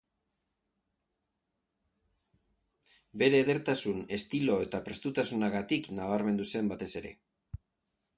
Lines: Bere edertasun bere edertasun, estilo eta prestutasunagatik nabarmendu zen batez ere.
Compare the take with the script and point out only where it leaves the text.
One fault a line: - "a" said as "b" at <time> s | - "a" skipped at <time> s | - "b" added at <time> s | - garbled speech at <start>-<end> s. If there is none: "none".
- "bere edertasun" skipped at 4.0 s